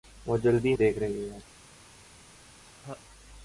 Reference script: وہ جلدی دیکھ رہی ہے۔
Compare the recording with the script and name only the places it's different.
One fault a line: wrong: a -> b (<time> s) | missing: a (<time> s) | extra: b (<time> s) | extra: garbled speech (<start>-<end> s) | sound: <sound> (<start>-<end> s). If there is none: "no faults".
sound: laugh (2.6-3.0 s)